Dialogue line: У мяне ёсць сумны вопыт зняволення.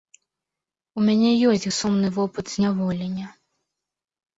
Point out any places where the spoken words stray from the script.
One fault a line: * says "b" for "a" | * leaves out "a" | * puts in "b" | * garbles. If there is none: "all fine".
all fine